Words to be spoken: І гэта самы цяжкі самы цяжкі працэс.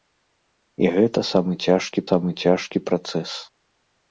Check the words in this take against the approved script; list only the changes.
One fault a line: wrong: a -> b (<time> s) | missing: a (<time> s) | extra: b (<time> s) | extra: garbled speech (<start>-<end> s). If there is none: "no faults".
no faults